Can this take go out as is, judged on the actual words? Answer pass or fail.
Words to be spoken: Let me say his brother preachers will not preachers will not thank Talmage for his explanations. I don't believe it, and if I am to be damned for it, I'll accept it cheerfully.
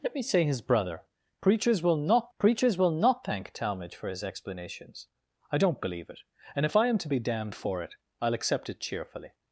pass